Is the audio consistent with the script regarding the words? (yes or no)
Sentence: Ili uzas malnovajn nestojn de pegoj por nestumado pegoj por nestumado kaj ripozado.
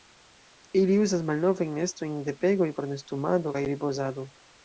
no